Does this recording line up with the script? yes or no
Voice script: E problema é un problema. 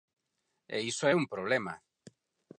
no